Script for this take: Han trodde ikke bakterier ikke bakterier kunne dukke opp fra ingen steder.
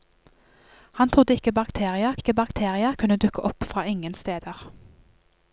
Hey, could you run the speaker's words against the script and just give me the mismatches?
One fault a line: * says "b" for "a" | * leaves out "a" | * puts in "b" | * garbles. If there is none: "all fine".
all fine